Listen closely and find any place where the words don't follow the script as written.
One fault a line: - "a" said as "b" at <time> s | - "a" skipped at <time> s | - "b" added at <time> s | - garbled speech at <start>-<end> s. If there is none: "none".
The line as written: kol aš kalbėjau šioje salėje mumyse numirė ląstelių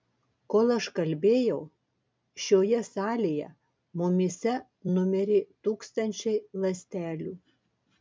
- "tūkstančiai" added at 5.7 s